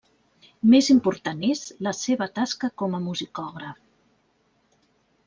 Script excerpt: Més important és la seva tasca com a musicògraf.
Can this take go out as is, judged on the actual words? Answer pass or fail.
pass